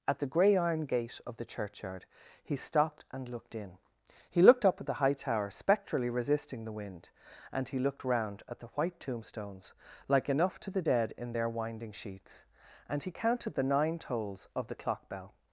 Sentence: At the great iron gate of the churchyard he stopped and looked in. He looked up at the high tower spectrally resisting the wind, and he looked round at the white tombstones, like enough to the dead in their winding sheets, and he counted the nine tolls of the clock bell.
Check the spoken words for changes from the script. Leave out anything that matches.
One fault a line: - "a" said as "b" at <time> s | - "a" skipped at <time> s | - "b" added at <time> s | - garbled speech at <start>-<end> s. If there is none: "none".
- "great" said as "grey" at 0.2 s